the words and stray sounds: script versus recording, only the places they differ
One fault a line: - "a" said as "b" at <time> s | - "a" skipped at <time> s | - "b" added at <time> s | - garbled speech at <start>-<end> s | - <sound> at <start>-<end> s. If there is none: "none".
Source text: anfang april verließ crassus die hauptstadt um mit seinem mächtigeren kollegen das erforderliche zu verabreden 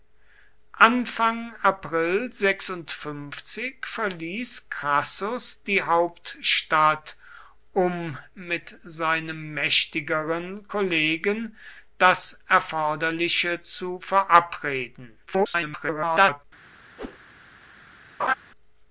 - garbled speech at 15.3-16.4 s
- whoosh at 17.0-17.2 s
- laugh at 18.2-18.3 s